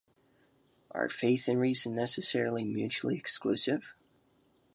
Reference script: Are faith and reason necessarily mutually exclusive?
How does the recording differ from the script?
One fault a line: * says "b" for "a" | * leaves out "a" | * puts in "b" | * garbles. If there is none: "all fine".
all fine